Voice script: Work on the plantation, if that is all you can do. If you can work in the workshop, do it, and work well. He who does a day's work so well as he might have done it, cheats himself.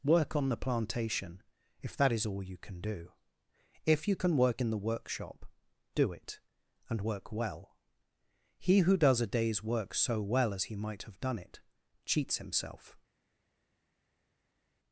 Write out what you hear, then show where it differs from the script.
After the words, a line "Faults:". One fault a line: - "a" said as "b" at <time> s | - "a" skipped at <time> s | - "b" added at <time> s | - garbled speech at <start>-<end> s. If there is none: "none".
Work on the plantation, if that is all you can do. If you can work in the workshop, do it, and work well. He who does a day's work so well as he might have done it, cheats himself.
Faults:
none